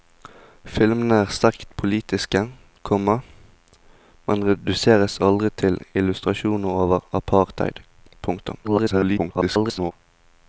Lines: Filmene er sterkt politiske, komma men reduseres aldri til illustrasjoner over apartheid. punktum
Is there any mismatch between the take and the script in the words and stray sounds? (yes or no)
yes